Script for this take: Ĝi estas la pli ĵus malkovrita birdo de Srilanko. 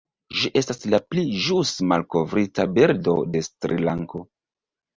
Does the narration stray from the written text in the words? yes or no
no